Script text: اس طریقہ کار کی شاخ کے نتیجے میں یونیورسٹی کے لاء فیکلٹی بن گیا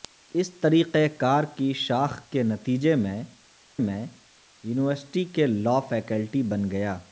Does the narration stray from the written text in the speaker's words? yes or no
yes